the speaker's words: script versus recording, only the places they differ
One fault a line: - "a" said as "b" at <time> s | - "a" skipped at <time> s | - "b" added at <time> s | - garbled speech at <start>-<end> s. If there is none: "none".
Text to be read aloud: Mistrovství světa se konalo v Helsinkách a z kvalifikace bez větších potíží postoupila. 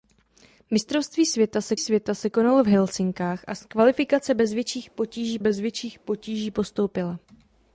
- "světa se" added at 1.8 s
- "bez větších potíží" added at 5.4 s